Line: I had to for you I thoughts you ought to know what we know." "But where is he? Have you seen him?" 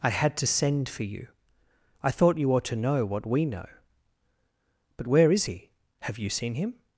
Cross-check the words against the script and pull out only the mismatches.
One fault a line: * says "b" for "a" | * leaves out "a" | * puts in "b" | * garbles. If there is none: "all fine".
* puts in "send"
* says "thought" for "thoughts"